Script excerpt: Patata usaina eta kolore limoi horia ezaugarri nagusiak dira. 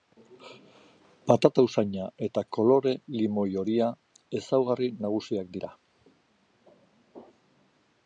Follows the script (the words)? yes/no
yes